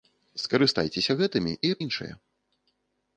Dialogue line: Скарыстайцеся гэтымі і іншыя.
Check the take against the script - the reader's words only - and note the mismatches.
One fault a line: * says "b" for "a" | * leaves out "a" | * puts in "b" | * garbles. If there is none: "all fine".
all fine